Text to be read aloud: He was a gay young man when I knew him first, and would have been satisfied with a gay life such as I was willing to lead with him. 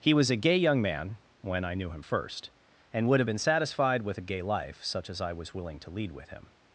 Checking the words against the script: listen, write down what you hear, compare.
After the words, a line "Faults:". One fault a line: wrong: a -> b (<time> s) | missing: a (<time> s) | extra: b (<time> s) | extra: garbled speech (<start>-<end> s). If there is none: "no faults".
He was a gay young man when I knew him first, and would have been satisfied with a gay life such as I was willing to lead with him.
Faults:
no faults